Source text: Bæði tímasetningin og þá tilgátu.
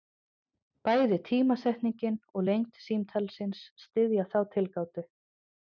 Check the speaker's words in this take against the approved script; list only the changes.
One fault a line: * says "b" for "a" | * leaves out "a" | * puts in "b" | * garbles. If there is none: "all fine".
* puts in "lengd símtalsins styðja"